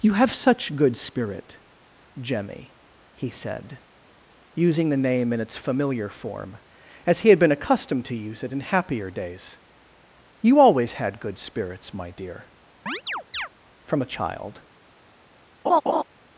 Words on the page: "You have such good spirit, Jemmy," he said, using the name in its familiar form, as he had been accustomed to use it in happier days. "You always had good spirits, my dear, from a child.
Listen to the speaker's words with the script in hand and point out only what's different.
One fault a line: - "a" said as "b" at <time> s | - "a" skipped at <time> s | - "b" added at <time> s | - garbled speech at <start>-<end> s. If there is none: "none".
none